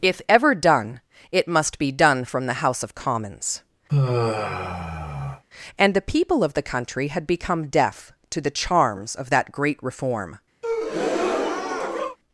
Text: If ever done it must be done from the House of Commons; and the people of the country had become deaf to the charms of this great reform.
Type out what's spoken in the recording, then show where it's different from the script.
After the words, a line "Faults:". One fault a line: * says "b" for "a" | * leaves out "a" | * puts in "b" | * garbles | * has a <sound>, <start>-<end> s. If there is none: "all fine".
If ever done it must be done from the House of Commons; and the people of the country had become deaf to the charms of that great reform.
Faults:
* has a sigh, 3.9-5.4 s
* says "that" for "this"
* has a breath, 10.6-12.2 s